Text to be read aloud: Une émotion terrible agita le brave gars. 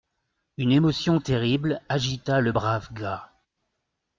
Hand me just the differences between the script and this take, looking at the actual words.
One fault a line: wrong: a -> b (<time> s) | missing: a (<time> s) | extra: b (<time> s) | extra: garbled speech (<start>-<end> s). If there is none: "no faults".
no faults